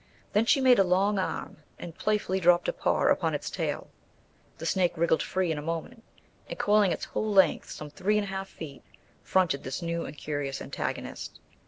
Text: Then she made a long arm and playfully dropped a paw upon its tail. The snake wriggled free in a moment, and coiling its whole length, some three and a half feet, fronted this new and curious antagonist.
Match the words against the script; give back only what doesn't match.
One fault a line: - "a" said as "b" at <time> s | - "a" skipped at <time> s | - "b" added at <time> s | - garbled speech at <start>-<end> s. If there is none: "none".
none